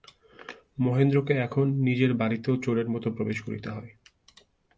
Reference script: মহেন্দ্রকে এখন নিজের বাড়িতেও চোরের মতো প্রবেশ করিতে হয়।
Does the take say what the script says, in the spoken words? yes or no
yes